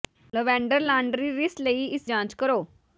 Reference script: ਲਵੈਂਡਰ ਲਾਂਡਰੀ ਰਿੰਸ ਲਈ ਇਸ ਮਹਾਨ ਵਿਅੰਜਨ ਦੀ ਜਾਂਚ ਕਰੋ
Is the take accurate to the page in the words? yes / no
no